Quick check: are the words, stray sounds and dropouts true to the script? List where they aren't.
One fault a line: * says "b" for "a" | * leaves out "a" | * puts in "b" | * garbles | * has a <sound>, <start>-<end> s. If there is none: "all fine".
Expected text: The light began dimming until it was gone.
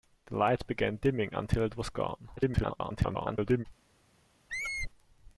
* garbles
* has a squeak, 4.5-4.9 s